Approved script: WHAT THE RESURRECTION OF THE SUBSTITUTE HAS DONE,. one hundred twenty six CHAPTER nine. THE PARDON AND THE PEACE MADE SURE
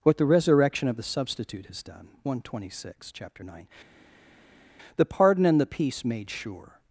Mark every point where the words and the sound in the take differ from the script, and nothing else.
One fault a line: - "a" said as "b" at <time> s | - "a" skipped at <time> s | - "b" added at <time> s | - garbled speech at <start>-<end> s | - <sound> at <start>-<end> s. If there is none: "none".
none